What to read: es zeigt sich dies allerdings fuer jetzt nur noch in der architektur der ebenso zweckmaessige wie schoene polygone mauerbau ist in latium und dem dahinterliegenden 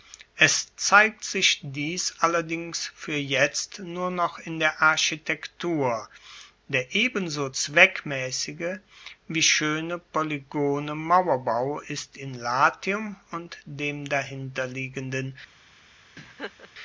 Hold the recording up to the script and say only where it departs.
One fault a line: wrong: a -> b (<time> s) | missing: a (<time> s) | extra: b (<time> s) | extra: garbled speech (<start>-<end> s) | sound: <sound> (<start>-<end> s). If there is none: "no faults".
sound: laugh (16.2-16.7 s)